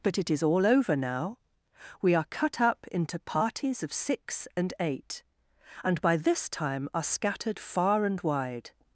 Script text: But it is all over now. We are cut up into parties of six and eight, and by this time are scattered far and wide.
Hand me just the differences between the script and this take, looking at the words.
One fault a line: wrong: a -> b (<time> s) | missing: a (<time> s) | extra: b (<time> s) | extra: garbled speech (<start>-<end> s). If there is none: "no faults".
no faults